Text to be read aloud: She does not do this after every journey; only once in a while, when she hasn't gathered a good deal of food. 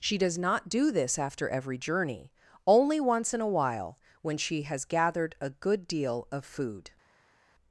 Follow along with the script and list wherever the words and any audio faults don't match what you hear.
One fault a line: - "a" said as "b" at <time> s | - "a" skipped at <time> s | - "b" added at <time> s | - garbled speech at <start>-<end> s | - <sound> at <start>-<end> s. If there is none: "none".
- "hasn't" said as "has" at 4.6 s